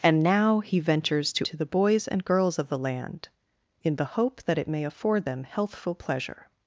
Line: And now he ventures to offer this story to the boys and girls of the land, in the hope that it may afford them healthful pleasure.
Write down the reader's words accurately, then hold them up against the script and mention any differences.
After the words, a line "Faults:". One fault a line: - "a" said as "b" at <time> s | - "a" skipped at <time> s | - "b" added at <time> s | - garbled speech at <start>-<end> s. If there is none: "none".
And now he ventures to to the boys and girls of the land, in the hope that it may afford them healthful pleasure.
Faults:
- "offer this story" skipped at 1.5 s